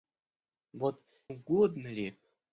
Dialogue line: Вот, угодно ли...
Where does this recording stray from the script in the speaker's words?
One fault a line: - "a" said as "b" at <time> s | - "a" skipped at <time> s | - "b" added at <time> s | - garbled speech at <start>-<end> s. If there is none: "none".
none